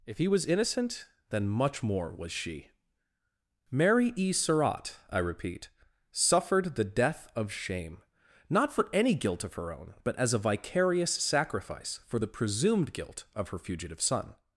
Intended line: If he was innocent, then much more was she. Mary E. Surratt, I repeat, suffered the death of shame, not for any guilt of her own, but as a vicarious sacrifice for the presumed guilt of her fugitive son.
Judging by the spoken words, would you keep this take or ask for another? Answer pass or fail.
pass